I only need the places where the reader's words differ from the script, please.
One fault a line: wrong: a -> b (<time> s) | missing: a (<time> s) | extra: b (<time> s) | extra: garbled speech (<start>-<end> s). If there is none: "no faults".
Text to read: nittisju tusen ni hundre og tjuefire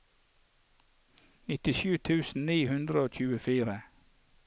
no faults